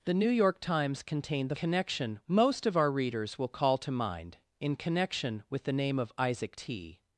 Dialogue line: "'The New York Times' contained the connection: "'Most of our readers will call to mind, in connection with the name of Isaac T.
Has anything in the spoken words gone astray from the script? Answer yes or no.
no